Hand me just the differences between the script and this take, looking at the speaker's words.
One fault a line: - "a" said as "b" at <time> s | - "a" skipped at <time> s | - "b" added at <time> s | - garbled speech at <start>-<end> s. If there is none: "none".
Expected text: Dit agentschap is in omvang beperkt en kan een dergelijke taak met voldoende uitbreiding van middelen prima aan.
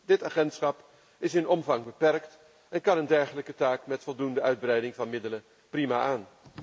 none